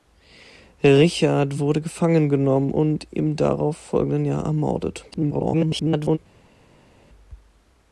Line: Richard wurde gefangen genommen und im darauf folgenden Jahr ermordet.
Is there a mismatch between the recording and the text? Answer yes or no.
yes